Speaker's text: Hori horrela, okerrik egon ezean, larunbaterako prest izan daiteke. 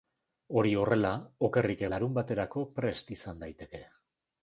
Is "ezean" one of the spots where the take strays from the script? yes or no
yes